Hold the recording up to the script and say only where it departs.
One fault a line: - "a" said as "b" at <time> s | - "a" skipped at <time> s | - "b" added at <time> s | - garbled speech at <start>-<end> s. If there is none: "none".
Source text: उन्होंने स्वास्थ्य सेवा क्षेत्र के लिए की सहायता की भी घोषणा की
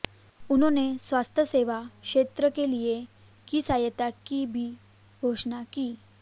none